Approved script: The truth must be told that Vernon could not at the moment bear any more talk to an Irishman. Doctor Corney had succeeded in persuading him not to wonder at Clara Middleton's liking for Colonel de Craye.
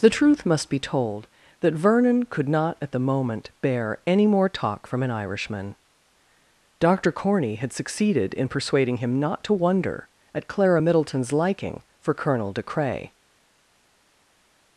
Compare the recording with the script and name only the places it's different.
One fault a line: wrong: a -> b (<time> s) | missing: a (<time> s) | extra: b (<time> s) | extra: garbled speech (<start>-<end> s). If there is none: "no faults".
wrong: to -> from (4.9 s)